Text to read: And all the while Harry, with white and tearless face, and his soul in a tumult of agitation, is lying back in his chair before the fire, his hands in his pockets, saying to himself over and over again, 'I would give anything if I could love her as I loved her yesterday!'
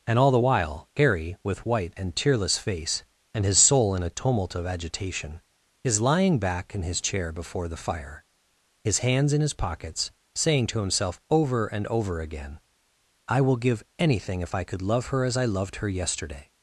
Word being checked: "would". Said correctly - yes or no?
no